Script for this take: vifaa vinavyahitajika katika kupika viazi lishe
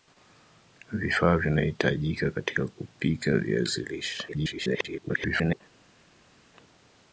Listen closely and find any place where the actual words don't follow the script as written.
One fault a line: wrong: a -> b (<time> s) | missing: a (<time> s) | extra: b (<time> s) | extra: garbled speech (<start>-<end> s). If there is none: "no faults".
extra: garbled speech (4.3-5.6 s)